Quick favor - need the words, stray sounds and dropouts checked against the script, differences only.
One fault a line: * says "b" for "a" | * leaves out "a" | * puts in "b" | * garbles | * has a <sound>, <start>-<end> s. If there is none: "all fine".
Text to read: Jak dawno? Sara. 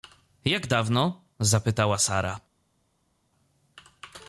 * puts in "zapytała"